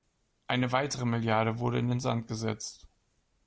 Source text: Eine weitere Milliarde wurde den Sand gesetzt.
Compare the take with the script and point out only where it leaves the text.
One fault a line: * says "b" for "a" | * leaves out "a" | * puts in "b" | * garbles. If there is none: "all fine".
* puts in "in"